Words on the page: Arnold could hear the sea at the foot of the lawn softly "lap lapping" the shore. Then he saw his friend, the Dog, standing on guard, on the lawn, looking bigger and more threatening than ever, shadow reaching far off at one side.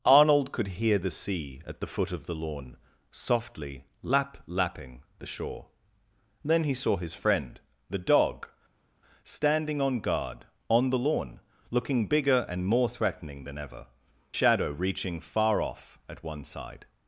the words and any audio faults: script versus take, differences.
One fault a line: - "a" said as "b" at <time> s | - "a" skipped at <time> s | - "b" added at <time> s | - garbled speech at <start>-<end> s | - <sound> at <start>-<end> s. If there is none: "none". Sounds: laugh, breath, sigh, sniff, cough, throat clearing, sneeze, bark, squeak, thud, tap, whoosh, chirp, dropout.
none